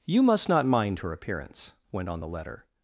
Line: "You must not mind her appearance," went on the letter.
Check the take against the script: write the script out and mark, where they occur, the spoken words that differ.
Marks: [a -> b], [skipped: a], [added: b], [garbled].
"You must not mind her appearance," went on the letter.